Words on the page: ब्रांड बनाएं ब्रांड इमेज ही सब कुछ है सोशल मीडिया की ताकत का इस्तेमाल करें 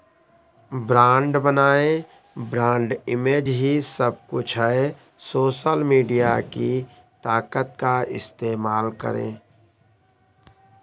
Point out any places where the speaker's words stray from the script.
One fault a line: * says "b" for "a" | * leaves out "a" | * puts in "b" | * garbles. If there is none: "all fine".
all fine